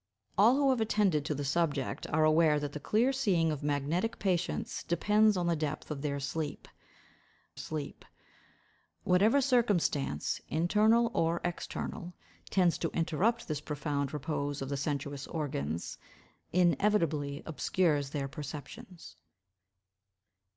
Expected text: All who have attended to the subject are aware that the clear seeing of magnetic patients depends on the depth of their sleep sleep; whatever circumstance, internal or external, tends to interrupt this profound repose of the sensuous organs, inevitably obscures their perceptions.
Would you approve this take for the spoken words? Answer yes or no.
yes